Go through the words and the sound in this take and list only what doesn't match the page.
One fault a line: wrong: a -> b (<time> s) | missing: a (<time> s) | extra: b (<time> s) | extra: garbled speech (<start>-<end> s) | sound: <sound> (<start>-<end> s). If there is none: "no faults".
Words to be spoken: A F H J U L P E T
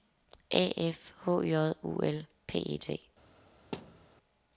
sound: thud (3.7-4.1 s)